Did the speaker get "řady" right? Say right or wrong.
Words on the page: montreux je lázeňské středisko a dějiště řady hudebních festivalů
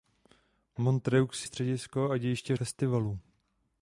wrong